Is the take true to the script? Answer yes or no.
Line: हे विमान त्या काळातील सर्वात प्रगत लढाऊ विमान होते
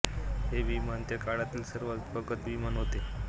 no